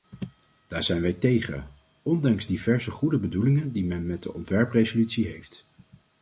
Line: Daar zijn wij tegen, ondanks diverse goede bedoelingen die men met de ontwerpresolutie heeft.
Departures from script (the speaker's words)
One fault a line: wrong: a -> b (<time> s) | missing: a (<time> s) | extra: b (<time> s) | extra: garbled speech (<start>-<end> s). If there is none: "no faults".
no faults